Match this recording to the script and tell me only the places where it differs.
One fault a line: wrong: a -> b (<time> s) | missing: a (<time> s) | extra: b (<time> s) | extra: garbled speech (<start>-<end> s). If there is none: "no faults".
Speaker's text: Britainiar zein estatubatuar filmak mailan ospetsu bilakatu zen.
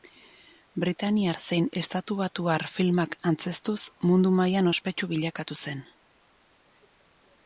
extra: antzeztuz mundu (3.3 s)